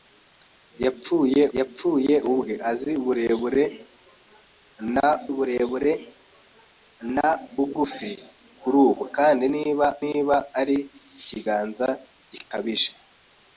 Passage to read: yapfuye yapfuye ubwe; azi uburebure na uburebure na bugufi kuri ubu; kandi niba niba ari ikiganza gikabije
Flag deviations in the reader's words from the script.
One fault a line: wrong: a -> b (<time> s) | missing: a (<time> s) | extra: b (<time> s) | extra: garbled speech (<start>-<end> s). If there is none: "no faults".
no faults